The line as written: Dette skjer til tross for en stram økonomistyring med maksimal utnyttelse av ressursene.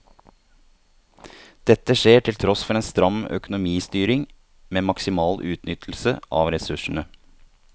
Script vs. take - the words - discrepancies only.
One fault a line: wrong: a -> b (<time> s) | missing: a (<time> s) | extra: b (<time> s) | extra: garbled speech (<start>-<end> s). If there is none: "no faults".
no faults